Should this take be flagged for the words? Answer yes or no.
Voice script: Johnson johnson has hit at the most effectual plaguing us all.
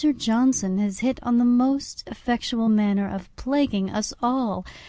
yes